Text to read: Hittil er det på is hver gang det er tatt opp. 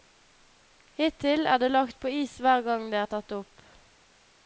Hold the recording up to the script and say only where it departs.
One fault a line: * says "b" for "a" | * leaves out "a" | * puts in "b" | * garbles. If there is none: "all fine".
* puts in "lagt"